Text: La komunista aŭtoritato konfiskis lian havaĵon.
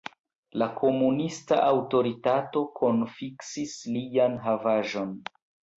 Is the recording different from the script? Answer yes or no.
no